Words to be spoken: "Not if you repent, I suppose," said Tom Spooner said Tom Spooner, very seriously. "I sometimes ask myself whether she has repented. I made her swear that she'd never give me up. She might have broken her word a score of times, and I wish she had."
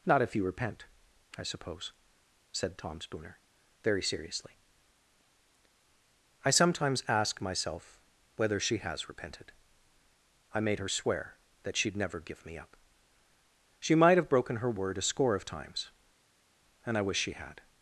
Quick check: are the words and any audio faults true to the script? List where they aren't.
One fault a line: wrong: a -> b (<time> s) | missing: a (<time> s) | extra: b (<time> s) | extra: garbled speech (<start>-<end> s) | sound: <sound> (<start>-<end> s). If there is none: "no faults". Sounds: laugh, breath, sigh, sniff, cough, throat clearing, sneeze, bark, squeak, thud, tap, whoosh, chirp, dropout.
missing: said Tom Spooner (3.4 s)